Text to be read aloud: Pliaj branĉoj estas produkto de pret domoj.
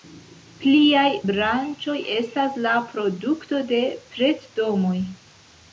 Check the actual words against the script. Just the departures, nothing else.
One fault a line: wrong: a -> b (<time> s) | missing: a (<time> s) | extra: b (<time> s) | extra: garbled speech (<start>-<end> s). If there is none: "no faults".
extra: la (2.7 s)